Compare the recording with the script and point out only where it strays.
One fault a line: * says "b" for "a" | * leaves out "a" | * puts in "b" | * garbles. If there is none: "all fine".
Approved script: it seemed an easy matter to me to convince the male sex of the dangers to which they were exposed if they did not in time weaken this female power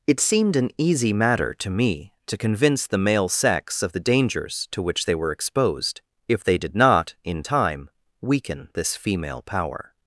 all fine